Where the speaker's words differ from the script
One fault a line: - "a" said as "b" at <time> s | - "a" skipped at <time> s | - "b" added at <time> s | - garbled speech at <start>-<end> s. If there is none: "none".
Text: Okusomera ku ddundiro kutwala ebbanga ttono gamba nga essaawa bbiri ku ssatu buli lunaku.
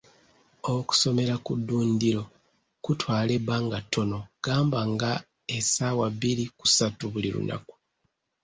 none